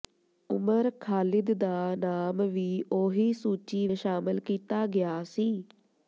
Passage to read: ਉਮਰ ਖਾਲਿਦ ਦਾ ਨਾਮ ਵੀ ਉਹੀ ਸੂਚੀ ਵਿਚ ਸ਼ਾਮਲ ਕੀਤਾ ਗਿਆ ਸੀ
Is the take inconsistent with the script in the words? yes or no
yes